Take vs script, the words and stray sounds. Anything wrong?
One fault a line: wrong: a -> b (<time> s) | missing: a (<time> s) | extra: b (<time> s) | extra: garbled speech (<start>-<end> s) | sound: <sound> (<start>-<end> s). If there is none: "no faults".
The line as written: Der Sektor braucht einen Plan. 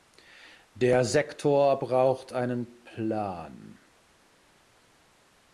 no faults